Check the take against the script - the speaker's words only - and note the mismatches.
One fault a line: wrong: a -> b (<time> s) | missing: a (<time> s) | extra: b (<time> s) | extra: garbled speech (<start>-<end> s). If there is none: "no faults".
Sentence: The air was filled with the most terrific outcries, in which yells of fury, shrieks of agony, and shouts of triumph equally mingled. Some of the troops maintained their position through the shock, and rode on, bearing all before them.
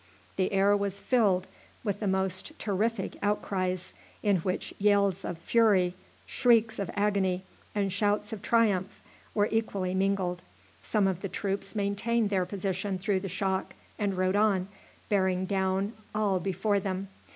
extra: were (9.3 s)
extra: down (15.5 s)